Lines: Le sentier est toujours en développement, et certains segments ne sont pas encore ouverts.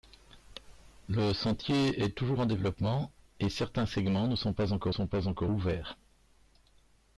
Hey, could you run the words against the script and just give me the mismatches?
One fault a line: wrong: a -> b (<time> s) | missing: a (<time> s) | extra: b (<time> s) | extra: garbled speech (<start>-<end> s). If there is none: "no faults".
extra: sont pas encore (4.9 s)